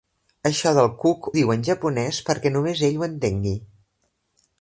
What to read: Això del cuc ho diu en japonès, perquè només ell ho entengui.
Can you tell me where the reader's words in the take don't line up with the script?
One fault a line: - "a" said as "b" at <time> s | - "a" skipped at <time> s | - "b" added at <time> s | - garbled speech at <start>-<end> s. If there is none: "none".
- "ho" skipped at 1.3 s